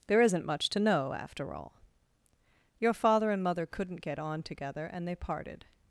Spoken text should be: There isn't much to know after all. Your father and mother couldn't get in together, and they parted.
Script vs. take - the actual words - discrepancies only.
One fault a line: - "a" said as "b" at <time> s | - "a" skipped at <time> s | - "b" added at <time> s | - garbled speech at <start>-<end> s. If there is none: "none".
- "in" said as "on" at 4.2 s